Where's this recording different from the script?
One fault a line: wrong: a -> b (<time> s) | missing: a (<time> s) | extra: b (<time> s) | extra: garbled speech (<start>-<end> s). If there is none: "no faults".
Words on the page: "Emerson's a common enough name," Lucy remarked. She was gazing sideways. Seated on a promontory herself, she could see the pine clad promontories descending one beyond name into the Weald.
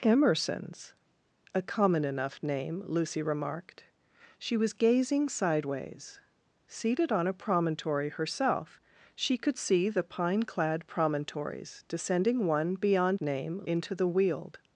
no faults